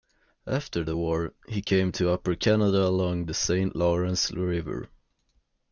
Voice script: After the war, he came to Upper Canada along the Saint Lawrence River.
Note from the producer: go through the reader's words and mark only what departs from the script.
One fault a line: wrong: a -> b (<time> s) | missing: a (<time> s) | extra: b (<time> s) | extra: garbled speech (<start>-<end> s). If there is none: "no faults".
no faults